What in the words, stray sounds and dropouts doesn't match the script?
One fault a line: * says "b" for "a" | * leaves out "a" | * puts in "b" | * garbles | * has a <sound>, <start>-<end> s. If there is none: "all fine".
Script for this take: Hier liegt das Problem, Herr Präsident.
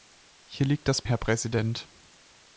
* leaves out "Problem"